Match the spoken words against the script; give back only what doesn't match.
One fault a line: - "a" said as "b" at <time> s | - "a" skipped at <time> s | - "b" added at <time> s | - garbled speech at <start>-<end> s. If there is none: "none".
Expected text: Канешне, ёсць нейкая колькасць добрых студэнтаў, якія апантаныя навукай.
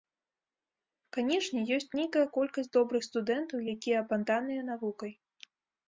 none